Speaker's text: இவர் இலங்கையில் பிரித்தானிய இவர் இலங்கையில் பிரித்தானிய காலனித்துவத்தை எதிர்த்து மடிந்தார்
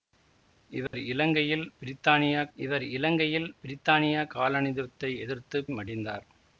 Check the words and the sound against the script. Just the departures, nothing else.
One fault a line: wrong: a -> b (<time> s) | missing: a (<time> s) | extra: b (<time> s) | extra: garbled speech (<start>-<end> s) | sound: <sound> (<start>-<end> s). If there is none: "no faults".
sound: dropout (0.9-0.9 s)